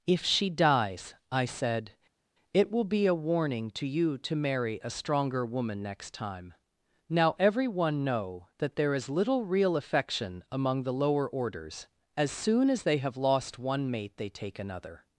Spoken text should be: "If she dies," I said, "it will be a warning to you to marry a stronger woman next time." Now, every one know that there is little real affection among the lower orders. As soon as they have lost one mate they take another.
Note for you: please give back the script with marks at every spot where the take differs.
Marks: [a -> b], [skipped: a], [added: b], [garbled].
"If she dies," I said, "it will be a warning to you to marry a stronger woman next time." Now, every one know that there is little real affection among the lower orders. As soon as they have lost one mate they take another.